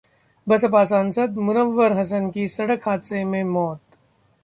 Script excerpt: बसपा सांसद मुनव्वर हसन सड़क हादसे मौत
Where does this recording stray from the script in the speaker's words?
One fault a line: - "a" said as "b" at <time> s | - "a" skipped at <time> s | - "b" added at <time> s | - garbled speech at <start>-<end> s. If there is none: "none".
- "की" added at 2.3 s
- "में" added at 3.2 s